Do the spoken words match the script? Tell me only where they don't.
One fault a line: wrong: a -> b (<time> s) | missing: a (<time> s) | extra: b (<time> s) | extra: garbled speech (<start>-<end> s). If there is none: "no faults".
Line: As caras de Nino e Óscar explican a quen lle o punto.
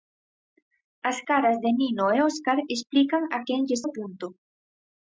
no faults